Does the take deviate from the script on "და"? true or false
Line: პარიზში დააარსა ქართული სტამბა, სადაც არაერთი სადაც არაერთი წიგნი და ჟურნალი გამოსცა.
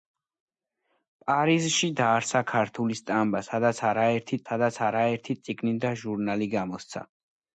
false